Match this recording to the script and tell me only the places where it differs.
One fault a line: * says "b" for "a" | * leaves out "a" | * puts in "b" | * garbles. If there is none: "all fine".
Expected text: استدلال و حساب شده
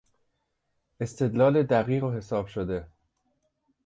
* puts in "دقیق"